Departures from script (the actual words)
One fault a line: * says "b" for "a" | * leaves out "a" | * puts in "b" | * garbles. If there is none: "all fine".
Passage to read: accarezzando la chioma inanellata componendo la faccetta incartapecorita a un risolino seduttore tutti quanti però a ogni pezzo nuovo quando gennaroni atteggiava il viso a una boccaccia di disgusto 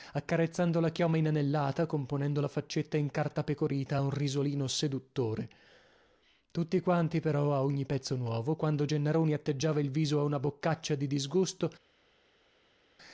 all fine